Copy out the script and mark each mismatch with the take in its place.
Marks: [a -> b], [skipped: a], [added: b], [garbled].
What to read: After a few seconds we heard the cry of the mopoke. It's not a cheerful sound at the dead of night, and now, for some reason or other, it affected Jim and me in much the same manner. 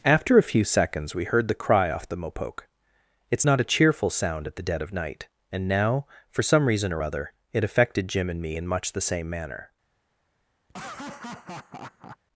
After a few seconds we heard the cry [of -> off] the mopoke. It's not a cheerful sound at the dead of night, and now, for some reason or other, it affected Jim and me in much the same manner.